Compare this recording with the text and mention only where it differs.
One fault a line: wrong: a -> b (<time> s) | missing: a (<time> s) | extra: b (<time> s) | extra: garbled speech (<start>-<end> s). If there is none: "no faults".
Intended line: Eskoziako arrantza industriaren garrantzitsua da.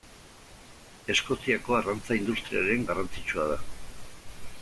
no faults